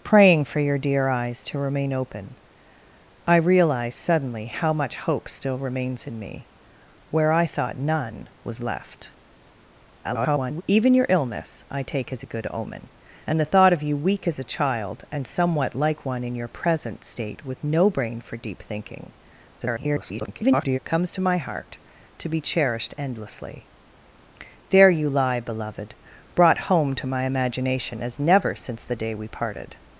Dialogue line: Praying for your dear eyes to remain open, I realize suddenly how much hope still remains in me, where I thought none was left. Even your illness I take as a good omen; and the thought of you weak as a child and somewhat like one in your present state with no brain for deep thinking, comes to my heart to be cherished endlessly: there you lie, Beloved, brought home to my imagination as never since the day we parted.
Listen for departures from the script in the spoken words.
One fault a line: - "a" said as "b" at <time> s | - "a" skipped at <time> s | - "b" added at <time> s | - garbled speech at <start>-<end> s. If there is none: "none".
- garbled speech at 10.0-10.6 s
- garbled speech at 19.6-20.8 s